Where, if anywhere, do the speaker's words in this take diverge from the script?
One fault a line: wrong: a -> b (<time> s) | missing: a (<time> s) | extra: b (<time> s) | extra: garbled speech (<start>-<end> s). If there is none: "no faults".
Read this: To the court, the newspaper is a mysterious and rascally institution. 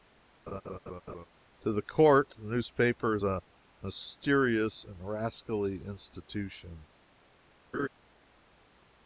no faults